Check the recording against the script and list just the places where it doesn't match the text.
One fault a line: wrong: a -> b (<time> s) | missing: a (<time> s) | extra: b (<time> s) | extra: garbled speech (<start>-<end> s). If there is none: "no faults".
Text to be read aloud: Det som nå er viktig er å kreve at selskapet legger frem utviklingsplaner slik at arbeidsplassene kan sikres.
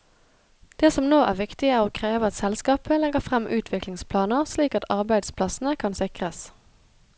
no faults